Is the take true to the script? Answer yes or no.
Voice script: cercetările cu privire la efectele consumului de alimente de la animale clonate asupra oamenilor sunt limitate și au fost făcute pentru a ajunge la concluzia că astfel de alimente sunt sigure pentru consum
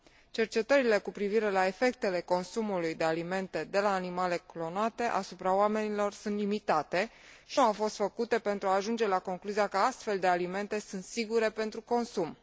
yes